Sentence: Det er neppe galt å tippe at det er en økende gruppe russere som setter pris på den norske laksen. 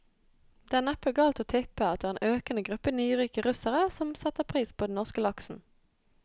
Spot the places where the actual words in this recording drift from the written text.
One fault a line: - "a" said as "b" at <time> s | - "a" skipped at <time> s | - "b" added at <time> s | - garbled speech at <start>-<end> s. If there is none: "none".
- "nyrike" added at 3.0 s